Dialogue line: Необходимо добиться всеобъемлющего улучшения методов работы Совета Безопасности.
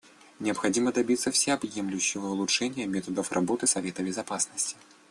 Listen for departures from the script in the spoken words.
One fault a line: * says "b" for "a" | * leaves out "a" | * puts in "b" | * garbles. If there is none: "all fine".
all fine